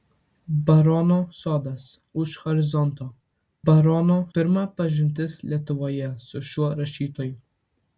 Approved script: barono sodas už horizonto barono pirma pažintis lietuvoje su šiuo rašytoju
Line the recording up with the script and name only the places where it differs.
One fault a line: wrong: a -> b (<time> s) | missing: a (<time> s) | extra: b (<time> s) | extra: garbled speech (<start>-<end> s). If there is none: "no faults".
no faults